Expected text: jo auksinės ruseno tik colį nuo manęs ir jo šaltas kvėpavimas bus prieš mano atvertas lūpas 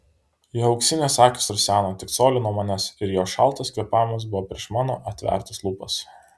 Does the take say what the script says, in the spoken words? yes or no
no